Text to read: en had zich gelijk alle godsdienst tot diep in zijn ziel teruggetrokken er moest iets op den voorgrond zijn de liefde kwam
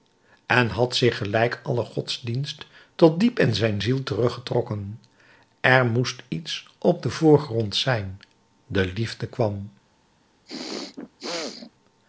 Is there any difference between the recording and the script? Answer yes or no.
no